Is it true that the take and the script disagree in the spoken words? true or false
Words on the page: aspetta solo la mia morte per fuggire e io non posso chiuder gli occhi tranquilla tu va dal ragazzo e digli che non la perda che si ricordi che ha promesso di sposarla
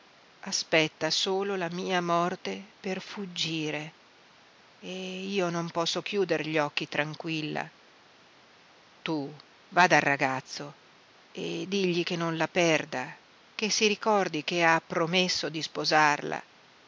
false